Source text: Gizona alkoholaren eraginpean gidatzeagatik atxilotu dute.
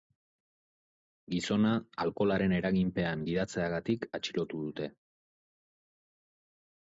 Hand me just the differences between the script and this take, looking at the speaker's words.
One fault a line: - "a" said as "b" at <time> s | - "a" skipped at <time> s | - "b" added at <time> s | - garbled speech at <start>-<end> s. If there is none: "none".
none